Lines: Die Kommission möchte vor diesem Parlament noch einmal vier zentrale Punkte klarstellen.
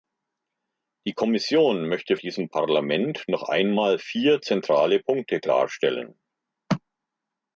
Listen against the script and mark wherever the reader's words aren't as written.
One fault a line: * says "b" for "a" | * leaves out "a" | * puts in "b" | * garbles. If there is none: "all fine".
* leaves out "vor"